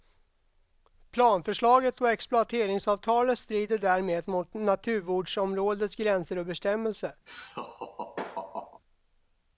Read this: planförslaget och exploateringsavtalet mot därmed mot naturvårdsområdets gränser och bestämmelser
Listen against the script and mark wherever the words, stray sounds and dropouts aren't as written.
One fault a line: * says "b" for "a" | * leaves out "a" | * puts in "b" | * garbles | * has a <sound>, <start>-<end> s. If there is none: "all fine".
* says "strider" for "mot"
* has a laugh, 7.3-8.8 s